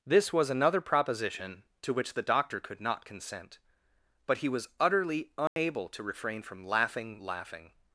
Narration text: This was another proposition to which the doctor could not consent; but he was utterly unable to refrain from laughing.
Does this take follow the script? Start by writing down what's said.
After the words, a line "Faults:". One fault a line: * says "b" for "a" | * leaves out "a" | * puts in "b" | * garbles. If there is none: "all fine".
This was another proposition to which the doctor could not consent; but he was utterly unable to refrain from laughing laughing.
Faults:
* puts in "laughing"